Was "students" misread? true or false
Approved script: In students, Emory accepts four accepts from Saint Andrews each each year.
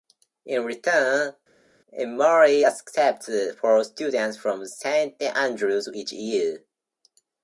true